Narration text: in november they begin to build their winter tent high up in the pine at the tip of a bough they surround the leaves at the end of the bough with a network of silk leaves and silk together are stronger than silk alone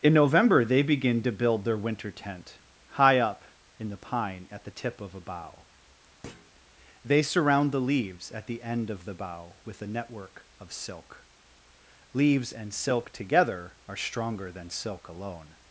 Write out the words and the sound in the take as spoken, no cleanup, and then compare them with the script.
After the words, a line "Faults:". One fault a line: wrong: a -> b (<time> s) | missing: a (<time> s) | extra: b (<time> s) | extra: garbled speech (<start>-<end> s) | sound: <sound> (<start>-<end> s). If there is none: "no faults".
in november they begin to build their winter tent high up in the pine at the tip of a bough they surround the leaves at the end of the bough with a network of silk leaves and silk together are stronger than silk alone
Faults:
sound: thud (6.2-6.5 s)